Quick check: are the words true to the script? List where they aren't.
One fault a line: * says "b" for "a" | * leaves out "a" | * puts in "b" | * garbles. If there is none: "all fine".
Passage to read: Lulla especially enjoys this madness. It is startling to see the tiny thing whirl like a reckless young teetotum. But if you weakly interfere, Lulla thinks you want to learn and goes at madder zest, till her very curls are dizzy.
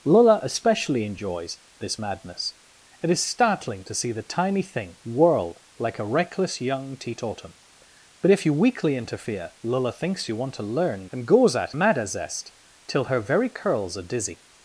all fine